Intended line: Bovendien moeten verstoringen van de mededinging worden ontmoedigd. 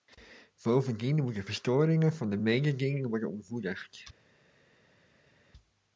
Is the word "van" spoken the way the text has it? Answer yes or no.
yes